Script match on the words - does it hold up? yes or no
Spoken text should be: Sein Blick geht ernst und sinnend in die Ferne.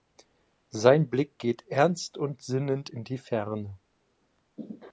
yes